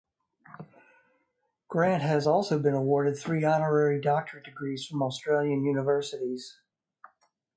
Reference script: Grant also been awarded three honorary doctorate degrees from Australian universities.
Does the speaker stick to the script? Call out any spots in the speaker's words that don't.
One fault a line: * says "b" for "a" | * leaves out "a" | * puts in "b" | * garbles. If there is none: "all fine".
* puts in "has"